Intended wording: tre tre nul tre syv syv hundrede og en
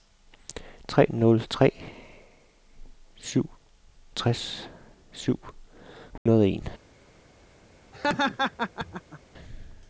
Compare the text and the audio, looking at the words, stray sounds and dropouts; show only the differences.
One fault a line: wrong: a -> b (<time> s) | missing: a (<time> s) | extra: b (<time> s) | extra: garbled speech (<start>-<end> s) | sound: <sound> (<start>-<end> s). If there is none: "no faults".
missing: tre (1.1 s)
extra: tres (4.2 s)
sound: dropout (6.2-6.3 s)
sound: laugh (7.9-9.2 s)